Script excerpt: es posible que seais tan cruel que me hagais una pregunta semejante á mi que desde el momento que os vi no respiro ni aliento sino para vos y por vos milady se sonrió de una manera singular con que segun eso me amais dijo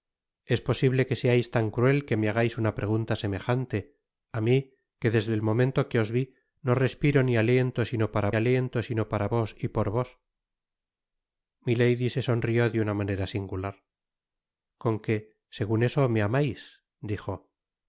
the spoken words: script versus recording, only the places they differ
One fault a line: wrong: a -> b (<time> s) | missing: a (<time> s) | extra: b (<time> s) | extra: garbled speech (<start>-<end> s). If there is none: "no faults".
extra: aliento sino para (8.4 s)